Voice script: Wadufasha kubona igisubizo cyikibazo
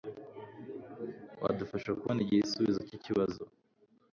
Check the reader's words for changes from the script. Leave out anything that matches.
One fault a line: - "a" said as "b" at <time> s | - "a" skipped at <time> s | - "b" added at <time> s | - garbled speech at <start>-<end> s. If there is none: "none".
none